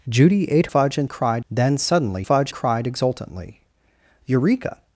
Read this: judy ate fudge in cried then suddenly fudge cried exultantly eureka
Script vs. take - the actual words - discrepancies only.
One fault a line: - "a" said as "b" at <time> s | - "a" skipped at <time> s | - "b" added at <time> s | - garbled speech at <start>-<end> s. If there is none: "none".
none